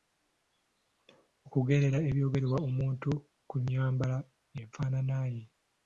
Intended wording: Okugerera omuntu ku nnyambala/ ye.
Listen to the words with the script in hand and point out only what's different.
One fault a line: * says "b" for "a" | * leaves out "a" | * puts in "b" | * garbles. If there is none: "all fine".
* puts in "ebyogerwa"
* puts in "enfaanana"